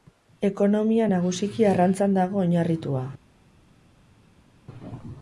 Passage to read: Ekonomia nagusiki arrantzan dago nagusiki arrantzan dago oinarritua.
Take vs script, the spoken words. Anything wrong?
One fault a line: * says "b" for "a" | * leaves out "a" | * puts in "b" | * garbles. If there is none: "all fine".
* leaves out "nagusiki arrantzan dago"